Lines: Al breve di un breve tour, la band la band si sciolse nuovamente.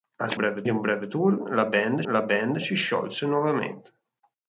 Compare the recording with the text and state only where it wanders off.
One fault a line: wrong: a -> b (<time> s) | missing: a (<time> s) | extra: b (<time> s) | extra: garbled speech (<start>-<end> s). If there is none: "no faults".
no faults